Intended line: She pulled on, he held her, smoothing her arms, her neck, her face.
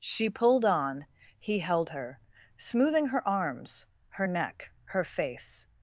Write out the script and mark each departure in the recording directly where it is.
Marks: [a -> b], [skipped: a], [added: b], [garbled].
She pulled on, he held her, smoothing her arms, her neck, her face.